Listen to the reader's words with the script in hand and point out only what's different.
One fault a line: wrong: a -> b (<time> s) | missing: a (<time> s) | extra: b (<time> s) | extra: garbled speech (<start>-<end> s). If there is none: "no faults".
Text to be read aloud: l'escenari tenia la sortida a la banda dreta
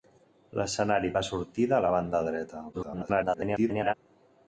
missing: tenia (1.1 s)
extra: garbled speech (2.7-3.9 s)